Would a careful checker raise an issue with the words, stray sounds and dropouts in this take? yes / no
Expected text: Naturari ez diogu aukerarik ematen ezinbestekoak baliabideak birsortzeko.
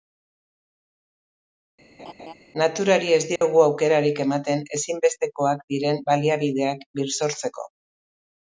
yes